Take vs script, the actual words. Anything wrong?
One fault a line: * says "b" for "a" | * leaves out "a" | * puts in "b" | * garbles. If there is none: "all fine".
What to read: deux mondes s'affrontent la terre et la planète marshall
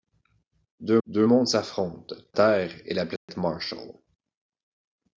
* puts in "deux"
* leaves out "la"